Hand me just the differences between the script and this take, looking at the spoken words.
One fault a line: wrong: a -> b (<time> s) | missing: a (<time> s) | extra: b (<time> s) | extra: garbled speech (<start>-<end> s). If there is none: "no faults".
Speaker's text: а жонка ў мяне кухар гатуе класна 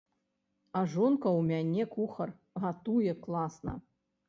no faults